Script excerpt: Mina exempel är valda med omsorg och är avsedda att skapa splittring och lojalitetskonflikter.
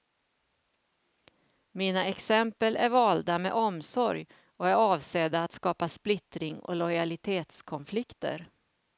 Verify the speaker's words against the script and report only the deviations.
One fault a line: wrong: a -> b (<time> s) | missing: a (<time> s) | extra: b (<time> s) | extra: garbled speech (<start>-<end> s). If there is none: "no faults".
no faults